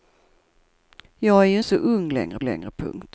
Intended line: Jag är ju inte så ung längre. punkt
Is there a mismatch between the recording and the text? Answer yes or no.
yes